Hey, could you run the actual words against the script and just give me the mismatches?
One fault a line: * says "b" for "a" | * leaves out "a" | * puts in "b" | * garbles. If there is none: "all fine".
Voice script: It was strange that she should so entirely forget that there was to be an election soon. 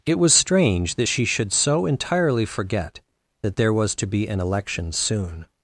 all fine